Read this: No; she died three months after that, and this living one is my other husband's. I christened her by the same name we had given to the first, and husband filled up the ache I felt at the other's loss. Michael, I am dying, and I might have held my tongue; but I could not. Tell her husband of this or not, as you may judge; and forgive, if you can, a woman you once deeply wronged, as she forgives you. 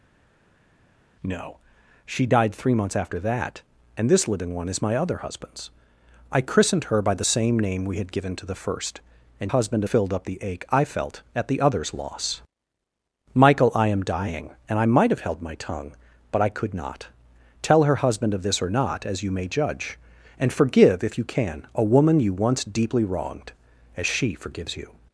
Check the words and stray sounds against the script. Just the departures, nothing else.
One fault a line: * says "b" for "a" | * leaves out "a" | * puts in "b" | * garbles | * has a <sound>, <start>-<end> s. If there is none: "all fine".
all fine